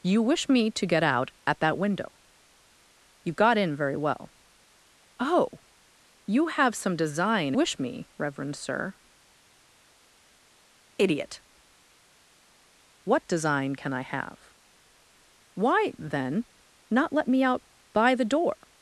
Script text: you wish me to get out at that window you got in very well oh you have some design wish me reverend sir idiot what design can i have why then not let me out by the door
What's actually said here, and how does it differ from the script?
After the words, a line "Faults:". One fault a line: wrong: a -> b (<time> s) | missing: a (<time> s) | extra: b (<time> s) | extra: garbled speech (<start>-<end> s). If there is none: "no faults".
you wish me to get out at that window you got in very well oh you have some design wish me reverend sir idiot what design can i have why then not let me out by the door
Faults:
no faults